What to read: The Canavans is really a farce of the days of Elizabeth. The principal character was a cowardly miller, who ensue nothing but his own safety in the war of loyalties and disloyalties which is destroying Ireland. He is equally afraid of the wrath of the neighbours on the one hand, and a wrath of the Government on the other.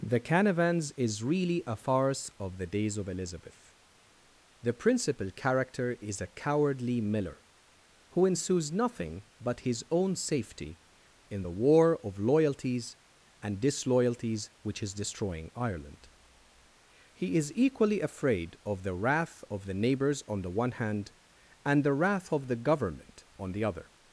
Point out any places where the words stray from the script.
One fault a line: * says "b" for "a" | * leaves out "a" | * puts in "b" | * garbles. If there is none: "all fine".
* says "is" for "was"
* says "ensues" for "ensue"
* says "the" for "a"